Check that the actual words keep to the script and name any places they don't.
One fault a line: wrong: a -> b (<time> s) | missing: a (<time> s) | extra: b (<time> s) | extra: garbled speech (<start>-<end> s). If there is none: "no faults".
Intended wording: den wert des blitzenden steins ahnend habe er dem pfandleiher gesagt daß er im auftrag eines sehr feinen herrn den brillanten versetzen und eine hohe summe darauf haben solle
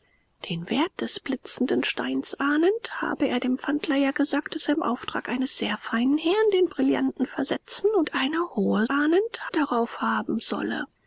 wrong: summe -> ahnend (8.9 s)